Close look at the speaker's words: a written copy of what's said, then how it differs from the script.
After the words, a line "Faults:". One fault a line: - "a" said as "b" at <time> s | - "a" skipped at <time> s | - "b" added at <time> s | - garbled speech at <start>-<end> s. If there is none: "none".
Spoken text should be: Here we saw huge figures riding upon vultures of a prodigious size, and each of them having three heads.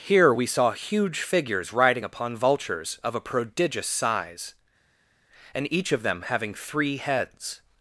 Here we saw huge figures riding upon vultures of a prodigious size, and each of them having three heads.
Faults:
none